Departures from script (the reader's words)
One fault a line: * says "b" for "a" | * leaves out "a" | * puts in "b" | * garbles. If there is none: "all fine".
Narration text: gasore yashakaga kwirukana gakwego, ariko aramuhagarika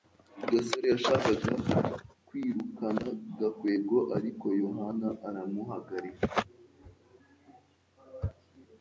* puts in "yohana"